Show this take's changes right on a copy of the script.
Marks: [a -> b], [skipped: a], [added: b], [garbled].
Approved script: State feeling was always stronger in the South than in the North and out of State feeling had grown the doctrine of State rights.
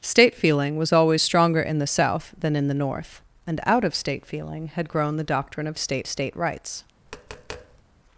State feeling was always stronger in the South than in the North and out of State feeling had grown the doctrine of State [added: State] rights.